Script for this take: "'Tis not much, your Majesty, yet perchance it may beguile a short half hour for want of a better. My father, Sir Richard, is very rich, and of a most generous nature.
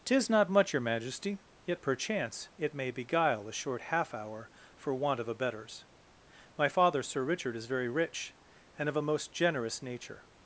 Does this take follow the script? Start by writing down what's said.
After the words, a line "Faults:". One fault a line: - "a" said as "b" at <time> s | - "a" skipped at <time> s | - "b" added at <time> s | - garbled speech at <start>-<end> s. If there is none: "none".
"'Tis not much, your Majesty, yet perchance it may beguile a short half hour for want of a betters. My father, Sir Richard, is very rich, and of a most generous nature.
Faults:
- "better" said as "betters" at 5.3 s